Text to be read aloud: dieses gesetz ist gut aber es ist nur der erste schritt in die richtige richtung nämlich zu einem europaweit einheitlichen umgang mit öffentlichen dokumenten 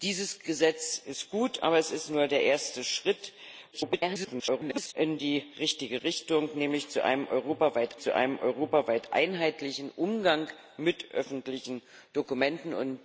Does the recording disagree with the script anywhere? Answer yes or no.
yes